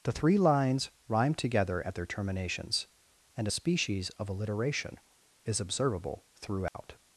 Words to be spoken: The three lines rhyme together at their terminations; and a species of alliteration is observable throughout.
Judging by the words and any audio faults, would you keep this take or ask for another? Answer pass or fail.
fail